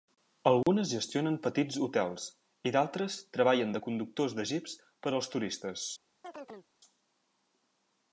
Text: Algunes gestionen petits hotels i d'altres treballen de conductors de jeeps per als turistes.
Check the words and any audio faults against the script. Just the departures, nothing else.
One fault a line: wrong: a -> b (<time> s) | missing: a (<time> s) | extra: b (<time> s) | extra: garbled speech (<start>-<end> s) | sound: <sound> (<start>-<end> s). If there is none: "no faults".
sound: dropout (0.6-0.7 s)
sound: chirp (6.2-6.7 s)